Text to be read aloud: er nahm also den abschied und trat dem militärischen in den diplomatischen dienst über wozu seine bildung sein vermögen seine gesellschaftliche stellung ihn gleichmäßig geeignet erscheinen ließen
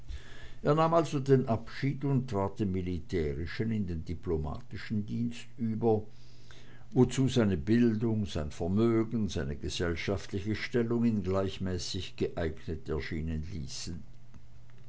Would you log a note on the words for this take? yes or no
no